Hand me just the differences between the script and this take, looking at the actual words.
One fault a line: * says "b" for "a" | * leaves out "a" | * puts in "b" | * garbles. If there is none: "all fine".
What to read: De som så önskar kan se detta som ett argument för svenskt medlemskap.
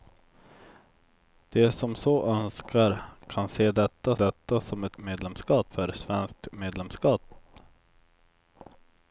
* puts in "detta"
* says "medlemskap" for "argument"